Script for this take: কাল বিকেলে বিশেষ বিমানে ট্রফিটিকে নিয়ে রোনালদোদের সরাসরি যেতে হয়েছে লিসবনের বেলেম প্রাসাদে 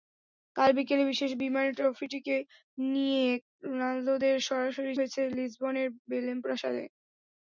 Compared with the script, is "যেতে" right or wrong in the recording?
wrong